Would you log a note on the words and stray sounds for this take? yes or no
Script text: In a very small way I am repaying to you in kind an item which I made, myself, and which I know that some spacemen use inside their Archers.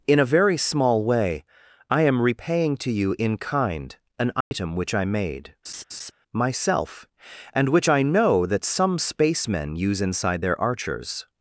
yes